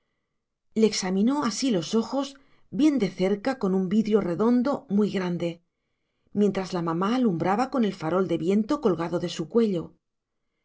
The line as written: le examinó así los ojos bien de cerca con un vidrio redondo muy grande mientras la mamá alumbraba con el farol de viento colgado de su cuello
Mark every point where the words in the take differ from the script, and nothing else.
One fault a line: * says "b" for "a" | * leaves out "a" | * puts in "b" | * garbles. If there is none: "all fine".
all fine